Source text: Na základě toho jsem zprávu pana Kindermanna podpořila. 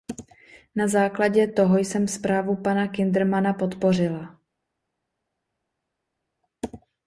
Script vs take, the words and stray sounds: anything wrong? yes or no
no